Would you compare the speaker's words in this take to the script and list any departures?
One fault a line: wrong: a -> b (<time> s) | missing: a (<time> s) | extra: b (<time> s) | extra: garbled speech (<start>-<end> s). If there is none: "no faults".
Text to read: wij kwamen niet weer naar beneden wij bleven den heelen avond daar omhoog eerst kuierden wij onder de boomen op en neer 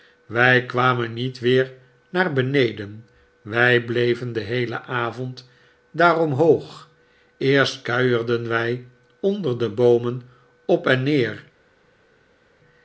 no faults